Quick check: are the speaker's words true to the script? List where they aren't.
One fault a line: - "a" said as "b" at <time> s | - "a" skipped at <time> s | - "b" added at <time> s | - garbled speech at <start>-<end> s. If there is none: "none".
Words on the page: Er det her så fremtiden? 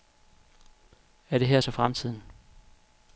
none